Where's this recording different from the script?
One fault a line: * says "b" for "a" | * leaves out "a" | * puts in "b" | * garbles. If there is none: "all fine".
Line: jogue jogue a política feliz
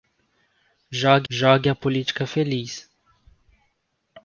all fine